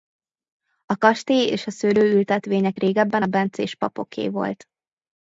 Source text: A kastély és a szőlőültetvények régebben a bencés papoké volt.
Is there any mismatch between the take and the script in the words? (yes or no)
no